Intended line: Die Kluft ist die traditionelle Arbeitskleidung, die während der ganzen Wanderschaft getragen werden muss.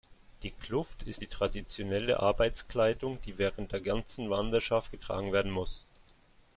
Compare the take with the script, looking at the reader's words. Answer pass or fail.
pass